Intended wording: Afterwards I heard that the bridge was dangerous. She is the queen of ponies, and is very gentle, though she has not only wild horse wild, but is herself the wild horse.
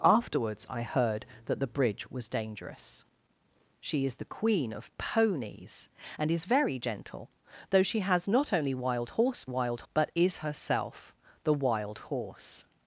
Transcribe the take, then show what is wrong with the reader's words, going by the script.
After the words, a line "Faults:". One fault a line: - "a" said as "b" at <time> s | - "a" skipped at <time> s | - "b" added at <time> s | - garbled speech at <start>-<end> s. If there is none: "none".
Afterwards I heard that the bridge was dangerous. She is the queen of ponies, and is very gentle, though she has not only wild horse wild, but is herself the wild horse.
Faults:
none